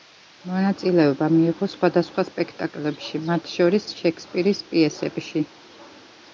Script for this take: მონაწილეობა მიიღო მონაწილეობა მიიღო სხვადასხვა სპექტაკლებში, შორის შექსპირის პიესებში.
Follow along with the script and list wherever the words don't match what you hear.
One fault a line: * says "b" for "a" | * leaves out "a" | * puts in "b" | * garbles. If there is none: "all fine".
* leaves out "მონაწილეობა მიიღო"
* puts in "მათ"